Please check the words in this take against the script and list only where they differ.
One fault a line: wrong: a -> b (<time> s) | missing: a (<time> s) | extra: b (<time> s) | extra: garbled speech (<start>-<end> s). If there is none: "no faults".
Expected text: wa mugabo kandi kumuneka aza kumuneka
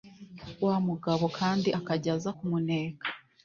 wrong: kumuneka -> akajya (1.8 s)